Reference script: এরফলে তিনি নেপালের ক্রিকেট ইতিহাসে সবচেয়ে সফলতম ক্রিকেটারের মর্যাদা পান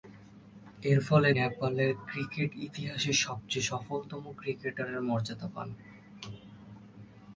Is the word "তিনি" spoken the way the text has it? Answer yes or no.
no